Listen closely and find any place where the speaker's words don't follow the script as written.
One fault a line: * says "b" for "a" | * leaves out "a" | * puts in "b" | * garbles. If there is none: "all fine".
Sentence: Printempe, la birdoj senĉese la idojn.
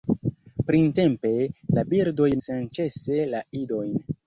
all fine